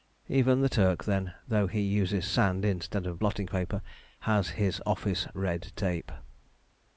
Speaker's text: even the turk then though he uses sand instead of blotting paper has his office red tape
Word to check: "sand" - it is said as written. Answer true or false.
true